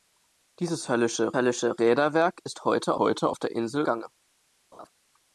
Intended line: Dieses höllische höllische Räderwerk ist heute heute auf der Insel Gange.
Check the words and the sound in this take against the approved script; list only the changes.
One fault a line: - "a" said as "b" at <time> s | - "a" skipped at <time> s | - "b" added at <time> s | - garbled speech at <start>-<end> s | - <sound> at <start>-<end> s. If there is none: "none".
- laugh at 4.7-4.9 s